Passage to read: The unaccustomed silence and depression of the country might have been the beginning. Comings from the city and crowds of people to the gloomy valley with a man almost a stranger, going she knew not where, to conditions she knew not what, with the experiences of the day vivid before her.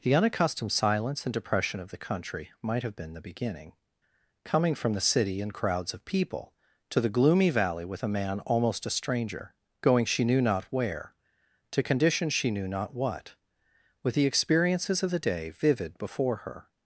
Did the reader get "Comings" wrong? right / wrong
wrong